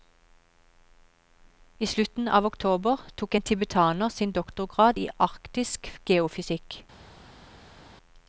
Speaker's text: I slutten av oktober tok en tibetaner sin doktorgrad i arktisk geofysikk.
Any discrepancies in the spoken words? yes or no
no